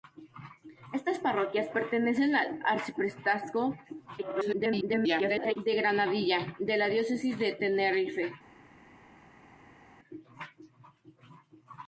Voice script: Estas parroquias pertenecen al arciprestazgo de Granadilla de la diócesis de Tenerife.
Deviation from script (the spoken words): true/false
true